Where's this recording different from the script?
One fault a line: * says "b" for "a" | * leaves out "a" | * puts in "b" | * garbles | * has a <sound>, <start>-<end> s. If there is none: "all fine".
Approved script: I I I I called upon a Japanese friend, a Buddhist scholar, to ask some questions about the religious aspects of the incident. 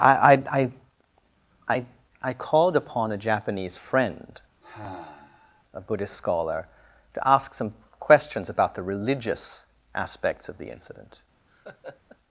* has a sigh, 4.6-5.6 s
* has a laugh, 11.5-12.2 s